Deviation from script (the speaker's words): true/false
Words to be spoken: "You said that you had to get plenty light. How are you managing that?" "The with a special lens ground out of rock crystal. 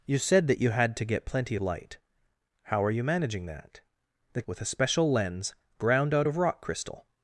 false